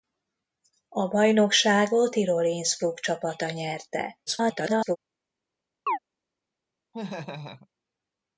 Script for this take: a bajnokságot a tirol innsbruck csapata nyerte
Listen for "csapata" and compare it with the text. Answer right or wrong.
right